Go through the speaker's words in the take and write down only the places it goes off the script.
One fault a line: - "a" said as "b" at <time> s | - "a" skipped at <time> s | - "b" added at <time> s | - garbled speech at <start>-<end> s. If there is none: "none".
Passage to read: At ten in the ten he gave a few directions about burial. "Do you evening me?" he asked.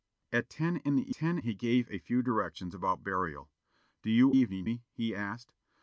none